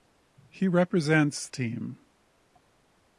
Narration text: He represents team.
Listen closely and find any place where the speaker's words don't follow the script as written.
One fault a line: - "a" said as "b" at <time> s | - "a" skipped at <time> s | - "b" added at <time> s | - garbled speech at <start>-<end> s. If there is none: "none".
none